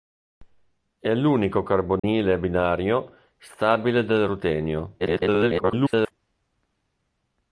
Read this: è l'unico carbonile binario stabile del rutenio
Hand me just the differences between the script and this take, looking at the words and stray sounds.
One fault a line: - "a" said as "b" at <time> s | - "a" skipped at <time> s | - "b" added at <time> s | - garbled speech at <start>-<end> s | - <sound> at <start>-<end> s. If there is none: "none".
- dropout at 2.0-2.0 s
- garbled speech at 5.0-6.1 s